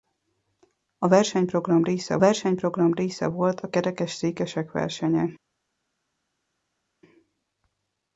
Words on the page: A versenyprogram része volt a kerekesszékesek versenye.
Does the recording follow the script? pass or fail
fail